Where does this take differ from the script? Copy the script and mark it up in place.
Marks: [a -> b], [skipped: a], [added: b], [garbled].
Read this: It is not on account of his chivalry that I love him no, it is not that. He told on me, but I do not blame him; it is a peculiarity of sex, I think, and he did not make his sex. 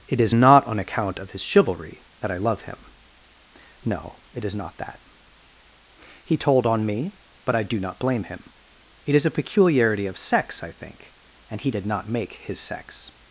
It is not on account of his chivalry that I love him no, it is not that. He told on me, but I do not blame him; it is a peculiarity of sex, I think, and he did not make his sex.